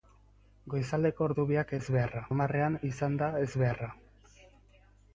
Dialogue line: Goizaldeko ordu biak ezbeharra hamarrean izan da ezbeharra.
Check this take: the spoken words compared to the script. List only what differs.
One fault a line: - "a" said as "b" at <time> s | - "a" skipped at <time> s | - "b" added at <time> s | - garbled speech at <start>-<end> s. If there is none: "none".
none